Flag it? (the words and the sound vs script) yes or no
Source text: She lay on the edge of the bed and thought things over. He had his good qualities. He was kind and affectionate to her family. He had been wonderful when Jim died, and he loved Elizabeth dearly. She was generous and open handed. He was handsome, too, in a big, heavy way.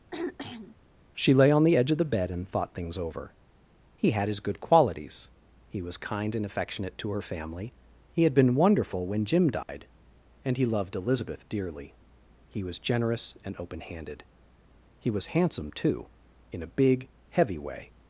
yes